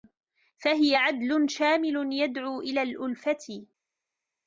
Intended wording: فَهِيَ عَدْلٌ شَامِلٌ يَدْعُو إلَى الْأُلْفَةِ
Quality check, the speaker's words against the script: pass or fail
pass